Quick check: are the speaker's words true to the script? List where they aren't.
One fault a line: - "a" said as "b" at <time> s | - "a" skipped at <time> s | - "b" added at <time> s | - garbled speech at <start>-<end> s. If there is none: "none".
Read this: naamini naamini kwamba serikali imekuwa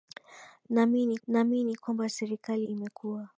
none